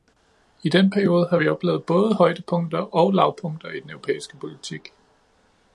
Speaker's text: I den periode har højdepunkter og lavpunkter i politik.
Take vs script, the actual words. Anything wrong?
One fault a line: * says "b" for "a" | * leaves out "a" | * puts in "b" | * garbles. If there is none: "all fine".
* puts in "vi oplevet både"
* puts in "den europæiske"